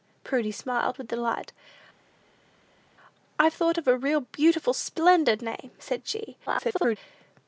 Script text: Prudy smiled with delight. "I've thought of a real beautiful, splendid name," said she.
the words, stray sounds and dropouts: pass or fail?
fail